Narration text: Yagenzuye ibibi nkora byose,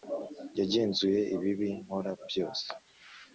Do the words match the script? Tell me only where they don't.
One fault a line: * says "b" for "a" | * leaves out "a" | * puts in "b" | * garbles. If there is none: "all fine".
all fine